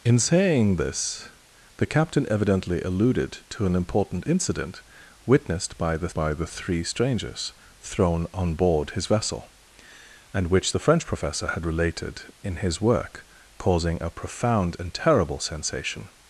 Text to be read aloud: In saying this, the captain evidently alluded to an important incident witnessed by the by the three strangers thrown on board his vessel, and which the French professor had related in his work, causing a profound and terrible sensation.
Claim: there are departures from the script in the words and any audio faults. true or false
false